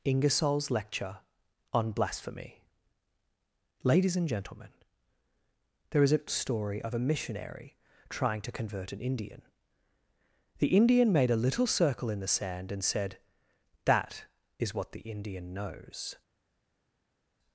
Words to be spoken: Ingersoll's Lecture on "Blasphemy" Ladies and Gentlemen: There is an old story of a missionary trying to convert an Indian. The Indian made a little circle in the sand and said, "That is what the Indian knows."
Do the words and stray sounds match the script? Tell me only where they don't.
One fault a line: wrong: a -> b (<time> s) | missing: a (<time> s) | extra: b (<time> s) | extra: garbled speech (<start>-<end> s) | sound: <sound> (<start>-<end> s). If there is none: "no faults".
missing: old (6.2 s)